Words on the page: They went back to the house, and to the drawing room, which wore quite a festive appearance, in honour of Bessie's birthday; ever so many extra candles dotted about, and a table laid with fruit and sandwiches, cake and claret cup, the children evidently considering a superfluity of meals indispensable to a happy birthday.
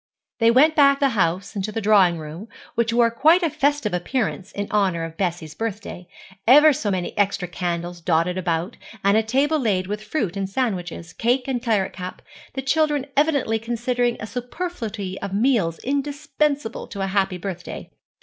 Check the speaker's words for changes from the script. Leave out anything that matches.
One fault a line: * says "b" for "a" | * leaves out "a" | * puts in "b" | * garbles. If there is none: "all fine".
* leaves out "to"